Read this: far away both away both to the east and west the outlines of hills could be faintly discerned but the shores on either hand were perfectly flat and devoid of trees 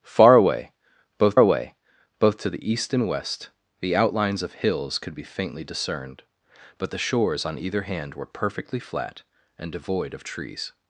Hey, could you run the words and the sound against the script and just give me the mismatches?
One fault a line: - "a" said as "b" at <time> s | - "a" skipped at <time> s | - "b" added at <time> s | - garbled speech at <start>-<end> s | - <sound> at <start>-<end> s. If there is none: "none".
none